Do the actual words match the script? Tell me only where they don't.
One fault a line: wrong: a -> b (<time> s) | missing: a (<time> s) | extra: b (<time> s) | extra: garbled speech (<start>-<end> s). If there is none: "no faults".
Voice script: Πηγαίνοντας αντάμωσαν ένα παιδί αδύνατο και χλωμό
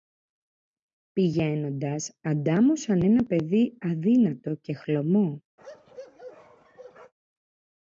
no faults